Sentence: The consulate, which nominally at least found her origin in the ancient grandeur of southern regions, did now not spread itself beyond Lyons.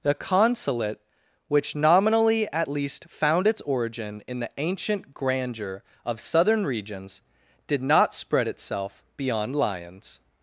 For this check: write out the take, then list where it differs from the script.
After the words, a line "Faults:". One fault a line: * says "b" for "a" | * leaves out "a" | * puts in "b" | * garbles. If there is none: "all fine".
The consulate, which nominally at least found its origin in the ancient grandeur of southern regions, did not spread itself beyond Lyons.
Faults:
* says "its" for "her"
* leaves out "now"